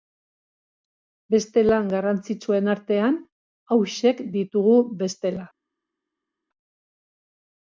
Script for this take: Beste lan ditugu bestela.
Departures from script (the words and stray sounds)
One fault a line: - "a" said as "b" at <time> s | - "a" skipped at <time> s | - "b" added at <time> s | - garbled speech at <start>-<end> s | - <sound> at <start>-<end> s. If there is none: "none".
- "garrantzitsuen artean hauexek" added at 1.9 s